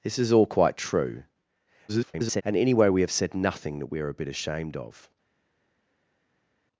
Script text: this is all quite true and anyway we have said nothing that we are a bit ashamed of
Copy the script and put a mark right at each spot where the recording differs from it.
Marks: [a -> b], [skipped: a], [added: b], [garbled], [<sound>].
this is all quite true [garbled] and anyway we have said nothing that we are a bit ashamed of